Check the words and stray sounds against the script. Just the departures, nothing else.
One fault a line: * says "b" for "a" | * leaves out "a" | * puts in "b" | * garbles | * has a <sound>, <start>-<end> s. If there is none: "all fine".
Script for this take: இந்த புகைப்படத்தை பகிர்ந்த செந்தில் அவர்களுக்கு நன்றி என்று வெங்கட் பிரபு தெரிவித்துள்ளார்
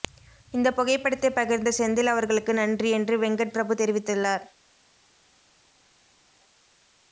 all fine